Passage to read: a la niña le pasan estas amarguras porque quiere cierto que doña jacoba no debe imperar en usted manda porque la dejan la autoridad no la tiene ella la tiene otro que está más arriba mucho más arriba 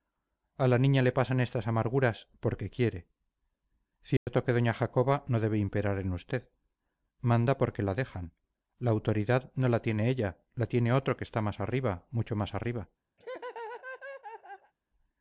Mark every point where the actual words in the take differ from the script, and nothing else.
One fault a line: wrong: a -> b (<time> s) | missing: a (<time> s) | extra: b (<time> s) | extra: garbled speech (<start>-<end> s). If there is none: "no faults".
no faults